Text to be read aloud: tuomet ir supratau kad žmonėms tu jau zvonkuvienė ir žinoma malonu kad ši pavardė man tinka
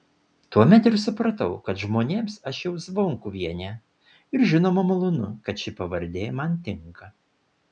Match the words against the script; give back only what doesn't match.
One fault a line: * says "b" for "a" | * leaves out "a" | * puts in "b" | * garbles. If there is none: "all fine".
* says "aš" for "tu"